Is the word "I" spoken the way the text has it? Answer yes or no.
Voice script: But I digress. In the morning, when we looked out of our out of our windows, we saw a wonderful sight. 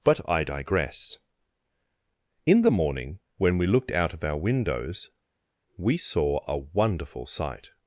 yes